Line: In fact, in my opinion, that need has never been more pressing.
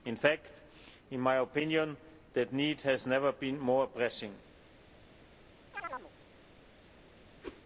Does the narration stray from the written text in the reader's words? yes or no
no